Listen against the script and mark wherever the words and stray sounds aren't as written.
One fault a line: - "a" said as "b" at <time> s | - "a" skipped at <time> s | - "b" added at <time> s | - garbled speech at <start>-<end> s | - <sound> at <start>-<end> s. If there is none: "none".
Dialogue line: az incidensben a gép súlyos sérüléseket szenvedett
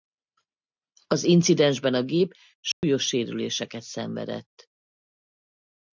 - dropout at 2.7-2.8 s